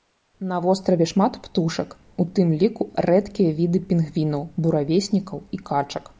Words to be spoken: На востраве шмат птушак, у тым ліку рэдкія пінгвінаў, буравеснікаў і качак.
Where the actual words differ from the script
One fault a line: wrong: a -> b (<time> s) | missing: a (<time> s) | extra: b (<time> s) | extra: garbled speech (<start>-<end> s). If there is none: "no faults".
extra: віды (3.6 s)